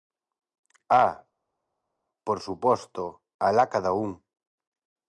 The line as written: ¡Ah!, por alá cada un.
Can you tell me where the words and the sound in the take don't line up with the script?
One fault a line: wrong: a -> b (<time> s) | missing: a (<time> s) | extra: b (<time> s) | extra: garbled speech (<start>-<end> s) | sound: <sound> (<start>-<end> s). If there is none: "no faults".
extra: suposto (2.5 s)